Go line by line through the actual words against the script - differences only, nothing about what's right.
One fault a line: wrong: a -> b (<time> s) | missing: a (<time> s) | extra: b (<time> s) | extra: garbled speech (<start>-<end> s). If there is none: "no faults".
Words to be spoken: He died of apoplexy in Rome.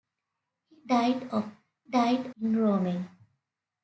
wrong: apoplexy -> died (1.9 s)